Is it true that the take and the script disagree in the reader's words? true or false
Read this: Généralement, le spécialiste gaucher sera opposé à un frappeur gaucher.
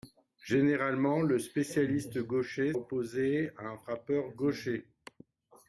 true